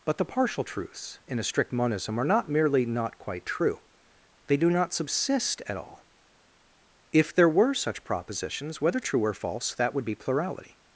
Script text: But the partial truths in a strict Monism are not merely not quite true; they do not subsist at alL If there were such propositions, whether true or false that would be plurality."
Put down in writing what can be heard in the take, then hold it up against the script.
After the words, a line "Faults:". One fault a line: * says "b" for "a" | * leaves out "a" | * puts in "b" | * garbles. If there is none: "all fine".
But the partial truths in a strict Monism are not merely not quite true; they do not subsist at alL If there were such propositions, whether true or false that would be plurality."
Faults:
all fine